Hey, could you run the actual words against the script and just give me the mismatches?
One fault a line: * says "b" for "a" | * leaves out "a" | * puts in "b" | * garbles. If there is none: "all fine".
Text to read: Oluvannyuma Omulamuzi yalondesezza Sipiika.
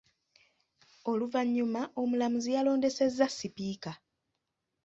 all fine